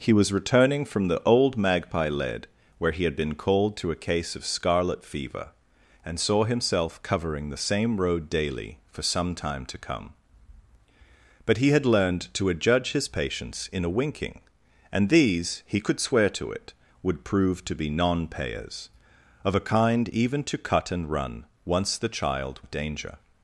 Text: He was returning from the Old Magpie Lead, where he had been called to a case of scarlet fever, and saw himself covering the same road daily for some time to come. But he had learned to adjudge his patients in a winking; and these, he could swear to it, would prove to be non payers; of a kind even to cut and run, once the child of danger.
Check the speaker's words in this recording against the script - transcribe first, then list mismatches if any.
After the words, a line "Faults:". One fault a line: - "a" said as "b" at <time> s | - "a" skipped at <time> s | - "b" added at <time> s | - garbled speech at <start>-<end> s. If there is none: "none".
He was returning from the Old Magpie Lead, where he had been called to a case of scarlet fever, and saw himself covering the same road daily for some time to come. But he had learned to adjudge his patients in a winking; and these, he could swear to it, would prove to be non payers; of a kind even to cut and run, once the child of danger.
Faults:
none